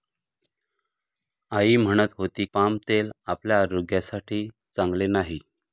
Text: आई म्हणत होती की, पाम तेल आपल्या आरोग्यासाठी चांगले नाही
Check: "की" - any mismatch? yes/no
yes